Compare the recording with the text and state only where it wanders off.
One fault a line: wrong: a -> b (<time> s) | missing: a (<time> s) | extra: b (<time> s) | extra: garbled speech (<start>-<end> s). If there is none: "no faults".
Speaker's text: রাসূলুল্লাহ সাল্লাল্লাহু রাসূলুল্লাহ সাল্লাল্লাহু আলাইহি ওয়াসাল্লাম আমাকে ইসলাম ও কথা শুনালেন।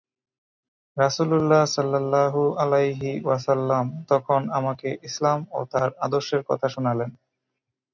missing: রাসূলুল্লাহ সাল্লাল্লাহু (2.4 s)
extra: তখন (4.1 s)
extra: তার আদর্শের (5.7 s)